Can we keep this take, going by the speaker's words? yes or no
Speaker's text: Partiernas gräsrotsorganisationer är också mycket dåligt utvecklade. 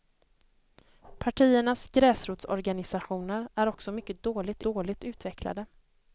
no